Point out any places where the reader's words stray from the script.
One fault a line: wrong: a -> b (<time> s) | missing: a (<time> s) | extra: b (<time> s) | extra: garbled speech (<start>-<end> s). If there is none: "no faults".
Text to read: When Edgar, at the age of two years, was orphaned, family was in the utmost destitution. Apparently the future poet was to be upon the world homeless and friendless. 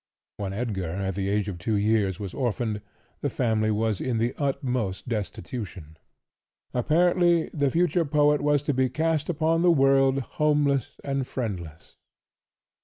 extra: the (3.2 s)
extra: cast (8.9 s)